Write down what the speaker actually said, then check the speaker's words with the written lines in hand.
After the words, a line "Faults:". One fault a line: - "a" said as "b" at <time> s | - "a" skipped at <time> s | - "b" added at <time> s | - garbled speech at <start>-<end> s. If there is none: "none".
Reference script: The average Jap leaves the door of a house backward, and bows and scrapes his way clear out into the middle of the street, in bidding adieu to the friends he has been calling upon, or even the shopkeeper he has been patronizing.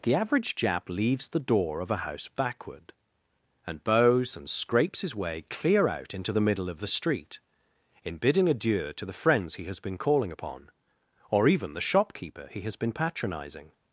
The average Jap leaves the door of a house backward, and bows and scrapes his way clear out into the middle of the street, in bidding adieu to the friends he has been calling upon, or even the shopkeeper he has been patronizing.
Faults:
none